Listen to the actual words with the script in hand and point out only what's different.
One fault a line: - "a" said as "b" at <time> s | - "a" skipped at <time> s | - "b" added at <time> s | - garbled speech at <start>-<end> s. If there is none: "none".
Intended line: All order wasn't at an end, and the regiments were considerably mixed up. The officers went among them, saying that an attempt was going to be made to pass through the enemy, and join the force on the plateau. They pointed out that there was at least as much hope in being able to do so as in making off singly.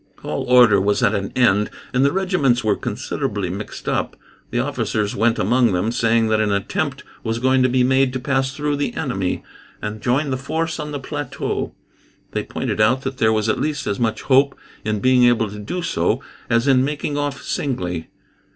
- "wasn't" said as "was" at 0.8 s